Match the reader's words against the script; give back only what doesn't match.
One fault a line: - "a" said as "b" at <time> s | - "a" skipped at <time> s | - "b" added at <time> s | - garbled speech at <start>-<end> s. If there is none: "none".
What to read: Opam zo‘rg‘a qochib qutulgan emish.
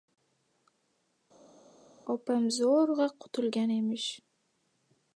- "qochib" skipped at 3.1 s